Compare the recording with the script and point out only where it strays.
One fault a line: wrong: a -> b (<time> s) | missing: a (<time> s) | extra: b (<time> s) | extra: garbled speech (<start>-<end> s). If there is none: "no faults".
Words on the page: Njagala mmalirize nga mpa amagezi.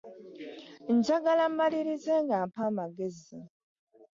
no faults